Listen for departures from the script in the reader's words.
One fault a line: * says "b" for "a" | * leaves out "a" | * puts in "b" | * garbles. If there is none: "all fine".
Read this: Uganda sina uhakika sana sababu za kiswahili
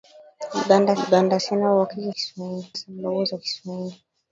* puts in "uganda"
* says "kiswahili" for "sana"